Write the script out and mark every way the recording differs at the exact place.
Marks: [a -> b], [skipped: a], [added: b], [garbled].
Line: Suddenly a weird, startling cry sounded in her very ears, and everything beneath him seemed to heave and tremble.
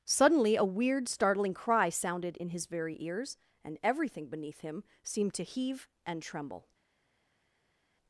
Suddenly a weird, startling cry sounded in [her -> his] very ears, and everything beneath him seemed to heave and tremble.